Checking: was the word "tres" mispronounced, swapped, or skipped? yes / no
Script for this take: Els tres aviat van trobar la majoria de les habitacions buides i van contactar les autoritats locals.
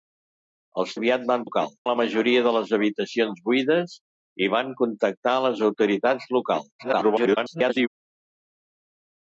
yes